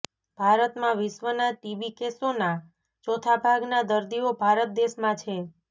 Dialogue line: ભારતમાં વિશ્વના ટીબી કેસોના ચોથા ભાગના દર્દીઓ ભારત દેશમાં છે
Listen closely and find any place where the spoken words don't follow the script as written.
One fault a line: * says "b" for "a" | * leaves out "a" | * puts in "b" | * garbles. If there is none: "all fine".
all fine